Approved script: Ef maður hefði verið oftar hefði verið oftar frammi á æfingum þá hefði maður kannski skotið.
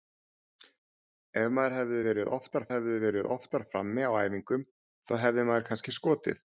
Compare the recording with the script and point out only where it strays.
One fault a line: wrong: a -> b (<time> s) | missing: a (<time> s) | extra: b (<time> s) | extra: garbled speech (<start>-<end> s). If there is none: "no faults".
no faults